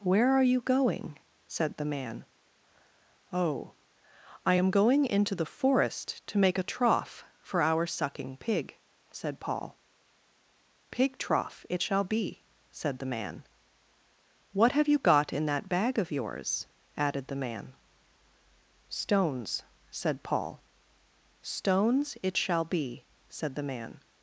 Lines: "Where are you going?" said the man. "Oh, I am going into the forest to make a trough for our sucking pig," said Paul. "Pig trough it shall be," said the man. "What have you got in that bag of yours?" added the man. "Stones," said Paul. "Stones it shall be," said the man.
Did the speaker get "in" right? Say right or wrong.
right